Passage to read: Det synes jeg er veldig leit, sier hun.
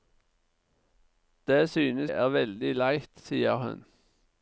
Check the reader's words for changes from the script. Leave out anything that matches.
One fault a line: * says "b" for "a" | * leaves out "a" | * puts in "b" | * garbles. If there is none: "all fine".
* leaves out "jeg"